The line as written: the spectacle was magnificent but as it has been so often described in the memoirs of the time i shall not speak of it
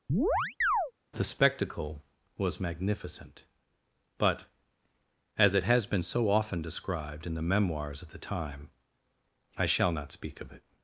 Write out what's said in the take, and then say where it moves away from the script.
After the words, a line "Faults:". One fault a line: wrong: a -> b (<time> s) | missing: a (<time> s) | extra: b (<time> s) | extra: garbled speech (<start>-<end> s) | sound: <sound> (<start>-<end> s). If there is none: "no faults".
the spectacle was magnificent but as it has been so often described in the memoirs of the time i shall not speak of it
Faults:
sound: chirp (0.1-0.9 s)